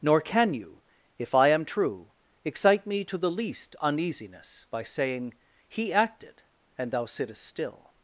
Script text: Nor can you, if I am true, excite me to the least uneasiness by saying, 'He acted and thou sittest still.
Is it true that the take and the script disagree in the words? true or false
false